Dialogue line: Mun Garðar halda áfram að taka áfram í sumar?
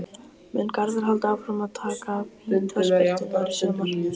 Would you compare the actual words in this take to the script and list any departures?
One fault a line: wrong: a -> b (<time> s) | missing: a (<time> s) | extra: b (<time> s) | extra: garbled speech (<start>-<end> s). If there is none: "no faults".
wrong: áfram -> vítaspyrnurnar (2.5 s)